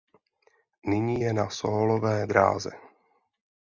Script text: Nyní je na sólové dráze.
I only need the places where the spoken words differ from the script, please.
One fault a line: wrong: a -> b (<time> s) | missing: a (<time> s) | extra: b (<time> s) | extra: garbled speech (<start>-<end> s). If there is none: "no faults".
no faults